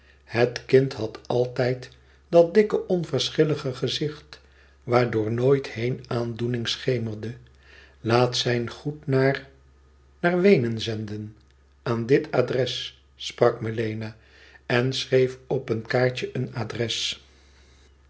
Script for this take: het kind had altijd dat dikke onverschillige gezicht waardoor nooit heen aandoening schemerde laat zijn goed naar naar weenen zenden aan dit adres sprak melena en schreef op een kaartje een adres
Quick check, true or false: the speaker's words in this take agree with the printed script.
true